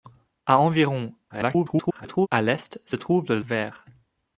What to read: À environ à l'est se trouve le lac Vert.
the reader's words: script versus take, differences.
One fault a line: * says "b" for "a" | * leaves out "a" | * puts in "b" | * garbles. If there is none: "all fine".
* garbles
* leaves out "lac"